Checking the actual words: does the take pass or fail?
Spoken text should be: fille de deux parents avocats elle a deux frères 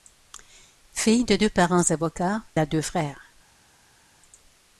fail